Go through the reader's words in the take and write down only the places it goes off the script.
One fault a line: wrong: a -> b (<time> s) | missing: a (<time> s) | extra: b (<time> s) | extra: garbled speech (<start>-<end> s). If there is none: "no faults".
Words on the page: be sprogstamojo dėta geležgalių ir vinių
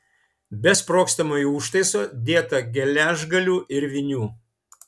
extra: užtaiso (1.6 s)